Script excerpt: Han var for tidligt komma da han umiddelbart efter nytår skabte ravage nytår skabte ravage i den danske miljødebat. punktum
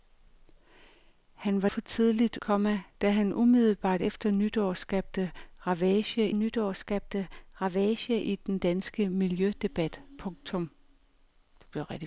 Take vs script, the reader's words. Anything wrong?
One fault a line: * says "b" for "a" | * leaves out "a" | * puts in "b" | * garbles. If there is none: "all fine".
all fine